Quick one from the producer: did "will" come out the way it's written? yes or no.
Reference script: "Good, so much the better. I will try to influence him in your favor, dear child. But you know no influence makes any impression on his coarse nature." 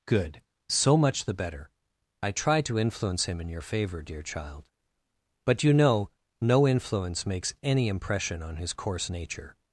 no